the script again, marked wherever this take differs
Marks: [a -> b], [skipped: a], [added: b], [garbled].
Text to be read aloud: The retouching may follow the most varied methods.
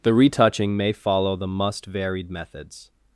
The retouching may follow the [most -> must] varied methods.